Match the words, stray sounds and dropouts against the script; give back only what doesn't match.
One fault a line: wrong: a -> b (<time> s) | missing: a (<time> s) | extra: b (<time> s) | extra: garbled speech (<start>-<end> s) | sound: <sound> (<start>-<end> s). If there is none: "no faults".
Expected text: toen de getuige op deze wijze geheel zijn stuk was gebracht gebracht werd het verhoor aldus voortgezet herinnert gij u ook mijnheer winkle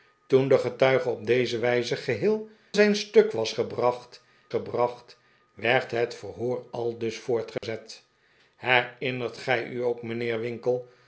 sound: dropout (7.6-7.6 s)